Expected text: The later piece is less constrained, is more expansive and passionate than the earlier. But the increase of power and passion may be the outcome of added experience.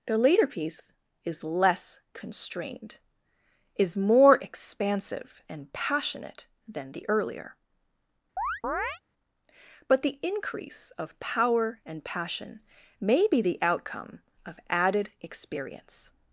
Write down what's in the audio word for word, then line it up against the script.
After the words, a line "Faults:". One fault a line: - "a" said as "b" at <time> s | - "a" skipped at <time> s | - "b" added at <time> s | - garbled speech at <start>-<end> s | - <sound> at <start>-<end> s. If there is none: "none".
The later piece is less constrained, is more expansive and passionate than the earlier. But the increase of power and passion may be the outcome of added experience.
Faults:
- chirp at 8.4-9.0 s